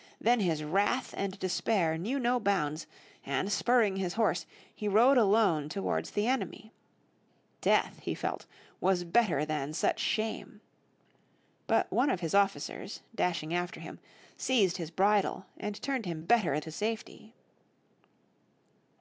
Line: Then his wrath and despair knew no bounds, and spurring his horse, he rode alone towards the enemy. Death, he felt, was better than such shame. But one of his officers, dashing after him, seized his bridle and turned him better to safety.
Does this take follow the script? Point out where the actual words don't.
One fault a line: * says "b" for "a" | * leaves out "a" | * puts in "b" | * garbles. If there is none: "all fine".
all fine